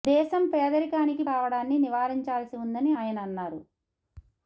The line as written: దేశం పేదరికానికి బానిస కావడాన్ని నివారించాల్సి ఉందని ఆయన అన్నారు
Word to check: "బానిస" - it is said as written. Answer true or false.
false